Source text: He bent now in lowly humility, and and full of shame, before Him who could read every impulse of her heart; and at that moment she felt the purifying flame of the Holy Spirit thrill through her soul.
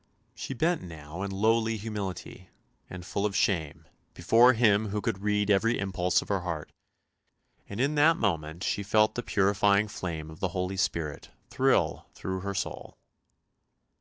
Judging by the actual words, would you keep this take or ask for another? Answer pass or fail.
fail